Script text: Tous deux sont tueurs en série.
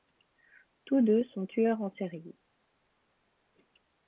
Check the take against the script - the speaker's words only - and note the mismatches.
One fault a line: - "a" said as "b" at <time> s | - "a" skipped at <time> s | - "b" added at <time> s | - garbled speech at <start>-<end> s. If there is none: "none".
none